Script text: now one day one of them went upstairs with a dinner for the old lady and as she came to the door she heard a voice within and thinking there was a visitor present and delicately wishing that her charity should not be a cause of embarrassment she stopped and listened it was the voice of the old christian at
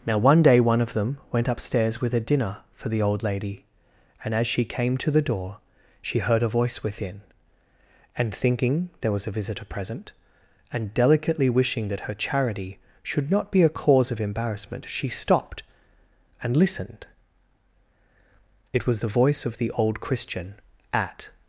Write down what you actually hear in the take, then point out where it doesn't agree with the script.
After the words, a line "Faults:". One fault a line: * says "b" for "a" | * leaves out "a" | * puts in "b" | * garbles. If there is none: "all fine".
now one day one of them went upstairs with a dinner for the old lady and as she came to the door she heard a voice within and thinking there was a visitor present and delicately wishing that her charity should not be a cause of embarrassment she stopped and listened it was the voice of the old christian at
Faults:
all fine